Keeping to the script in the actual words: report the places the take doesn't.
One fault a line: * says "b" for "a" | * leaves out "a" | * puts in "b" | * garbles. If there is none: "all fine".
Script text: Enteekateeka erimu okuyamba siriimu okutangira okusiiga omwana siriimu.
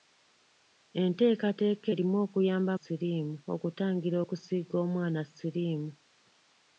all fine